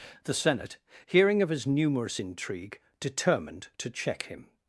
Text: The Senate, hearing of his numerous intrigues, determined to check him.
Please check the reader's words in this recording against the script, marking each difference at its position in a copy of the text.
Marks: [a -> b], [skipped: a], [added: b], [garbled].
The Senate, hearing of his numerous [intrigues, -> intrigue] determined to check him.